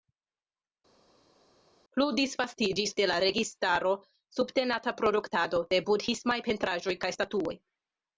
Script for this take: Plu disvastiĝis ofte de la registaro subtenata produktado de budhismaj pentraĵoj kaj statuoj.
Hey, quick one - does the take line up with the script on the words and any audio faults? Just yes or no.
no